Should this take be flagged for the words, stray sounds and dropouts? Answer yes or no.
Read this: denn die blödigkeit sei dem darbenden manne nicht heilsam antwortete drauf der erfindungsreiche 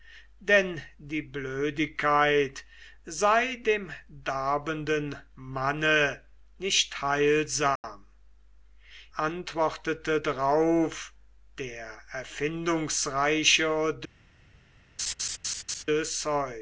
yes